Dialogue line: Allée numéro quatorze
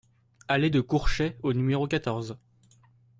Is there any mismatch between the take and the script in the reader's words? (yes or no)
yes